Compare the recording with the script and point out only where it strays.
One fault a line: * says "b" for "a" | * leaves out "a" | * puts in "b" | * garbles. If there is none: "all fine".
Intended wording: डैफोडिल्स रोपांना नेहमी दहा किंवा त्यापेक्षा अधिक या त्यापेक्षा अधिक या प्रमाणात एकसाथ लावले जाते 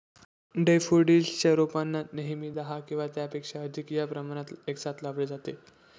* puts in "च्या"
* leaves out "त्यापेक्षा अधिक या"